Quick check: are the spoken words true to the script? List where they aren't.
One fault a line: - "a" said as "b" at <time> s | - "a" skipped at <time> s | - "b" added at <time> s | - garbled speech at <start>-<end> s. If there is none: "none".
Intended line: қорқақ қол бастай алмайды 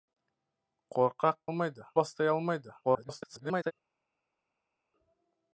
- "қол" said as "алмайды" at 1.5 s
- garbled speech at 2.8-3.7 s